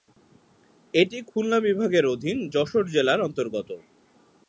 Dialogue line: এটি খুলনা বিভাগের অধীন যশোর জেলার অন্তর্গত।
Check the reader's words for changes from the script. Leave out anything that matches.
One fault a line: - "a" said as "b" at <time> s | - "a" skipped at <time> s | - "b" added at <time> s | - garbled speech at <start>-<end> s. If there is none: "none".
none